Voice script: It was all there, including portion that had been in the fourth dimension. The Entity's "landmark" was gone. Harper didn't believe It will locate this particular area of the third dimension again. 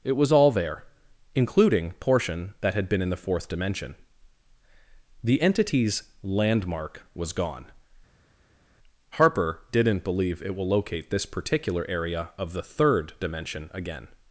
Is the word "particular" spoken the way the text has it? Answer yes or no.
yes